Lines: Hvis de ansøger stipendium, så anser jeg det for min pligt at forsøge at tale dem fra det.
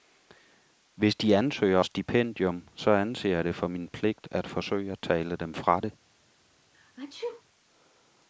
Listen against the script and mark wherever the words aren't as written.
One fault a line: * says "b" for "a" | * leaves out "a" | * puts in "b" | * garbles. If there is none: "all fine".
all fine